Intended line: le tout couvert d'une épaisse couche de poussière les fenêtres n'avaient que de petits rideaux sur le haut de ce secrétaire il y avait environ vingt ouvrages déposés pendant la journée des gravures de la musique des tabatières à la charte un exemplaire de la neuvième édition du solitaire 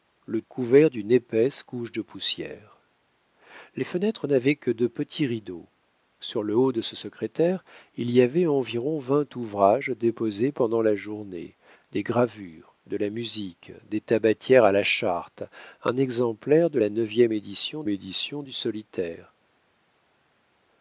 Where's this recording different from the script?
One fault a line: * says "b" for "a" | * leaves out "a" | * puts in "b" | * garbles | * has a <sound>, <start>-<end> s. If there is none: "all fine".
* leaves out "tout"
* puts in "édition"